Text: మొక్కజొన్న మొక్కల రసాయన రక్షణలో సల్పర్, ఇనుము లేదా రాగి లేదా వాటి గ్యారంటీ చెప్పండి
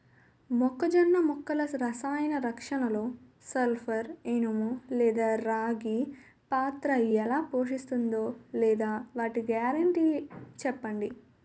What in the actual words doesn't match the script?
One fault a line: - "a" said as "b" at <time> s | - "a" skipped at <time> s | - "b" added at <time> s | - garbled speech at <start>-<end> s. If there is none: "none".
- "పాత్ర ఎలా పోషిస్తుందో" added at 6.5 s